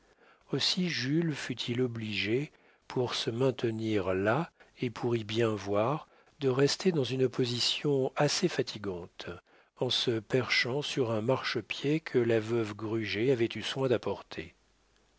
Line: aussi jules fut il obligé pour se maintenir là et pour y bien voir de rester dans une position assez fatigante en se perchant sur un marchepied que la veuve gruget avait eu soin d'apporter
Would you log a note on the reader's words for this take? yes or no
no